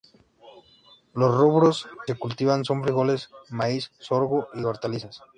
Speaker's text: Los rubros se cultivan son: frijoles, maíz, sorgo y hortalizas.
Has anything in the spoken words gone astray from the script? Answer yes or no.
no